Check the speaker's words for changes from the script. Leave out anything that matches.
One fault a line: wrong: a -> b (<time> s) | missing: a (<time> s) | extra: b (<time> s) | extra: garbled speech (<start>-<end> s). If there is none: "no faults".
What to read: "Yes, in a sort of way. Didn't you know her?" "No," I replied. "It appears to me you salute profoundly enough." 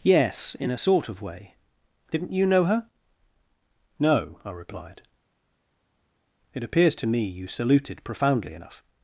wrong: salute -> saluted (7.5 s)